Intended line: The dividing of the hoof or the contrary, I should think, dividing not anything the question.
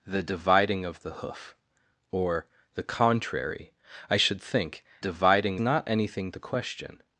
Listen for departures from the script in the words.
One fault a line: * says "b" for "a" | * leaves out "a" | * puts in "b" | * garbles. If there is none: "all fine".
all fine